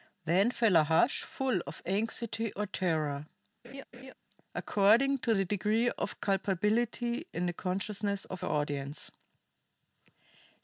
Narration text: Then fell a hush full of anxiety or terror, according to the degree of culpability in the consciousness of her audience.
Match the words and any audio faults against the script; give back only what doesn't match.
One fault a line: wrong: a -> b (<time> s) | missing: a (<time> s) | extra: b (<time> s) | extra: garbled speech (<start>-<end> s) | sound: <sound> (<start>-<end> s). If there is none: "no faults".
sound: laugh (3.6-4.1 s)